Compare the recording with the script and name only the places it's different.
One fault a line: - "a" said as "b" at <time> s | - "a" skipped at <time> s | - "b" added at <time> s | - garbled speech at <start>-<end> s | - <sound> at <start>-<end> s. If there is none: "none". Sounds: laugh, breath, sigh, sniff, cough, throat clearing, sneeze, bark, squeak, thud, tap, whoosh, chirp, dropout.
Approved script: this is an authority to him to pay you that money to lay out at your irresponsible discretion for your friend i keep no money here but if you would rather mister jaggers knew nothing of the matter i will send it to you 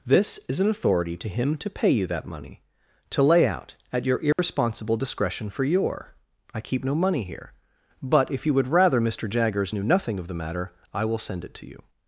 - dropout at 4.3-4.4 s
- "friend" skipped at 6.2 s